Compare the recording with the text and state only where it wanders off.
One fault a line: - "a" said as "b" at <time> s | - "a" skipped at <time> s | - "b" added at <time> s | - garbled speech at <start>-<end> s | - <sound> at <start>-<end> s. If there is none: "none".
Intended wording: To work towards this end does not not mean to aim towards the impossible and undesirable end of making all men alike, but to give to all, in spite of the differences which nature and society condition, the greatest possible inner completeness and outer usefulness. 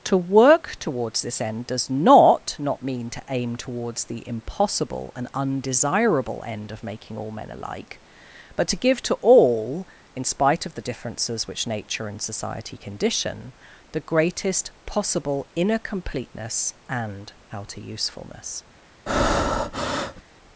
- breath at 19.1-20.2 s